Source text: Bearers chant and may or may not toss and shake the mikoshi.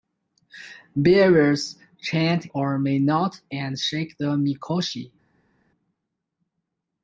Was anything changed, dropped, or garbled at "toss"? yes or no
yes